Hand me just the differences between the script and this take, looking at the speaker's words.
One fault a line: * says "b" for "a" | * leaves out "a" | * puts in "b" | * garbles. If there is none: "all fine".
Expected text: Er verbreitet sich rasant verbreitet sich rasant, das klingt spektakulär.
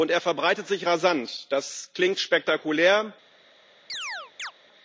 * leaves out "verbreitet sich rasant"